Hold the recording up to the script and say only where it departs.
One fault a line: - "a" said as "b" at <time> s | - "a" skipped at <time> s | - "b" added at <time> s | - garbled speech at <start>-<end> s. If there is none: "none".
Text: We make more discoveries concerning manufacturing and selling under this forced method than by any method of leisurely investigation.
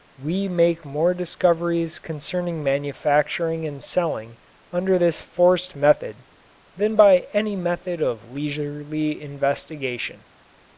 none